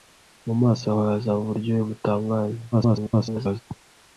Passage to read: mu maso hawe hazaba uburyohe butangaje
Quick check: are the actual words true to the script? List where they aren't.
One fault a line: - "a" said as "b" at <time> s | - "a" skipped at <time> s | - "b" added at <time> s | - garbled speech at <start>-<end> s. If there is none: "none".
- garbled speech at 2.7-3.6 s